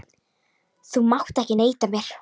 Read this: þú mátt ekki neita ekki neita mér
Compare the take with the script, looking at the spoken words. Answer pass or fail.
fail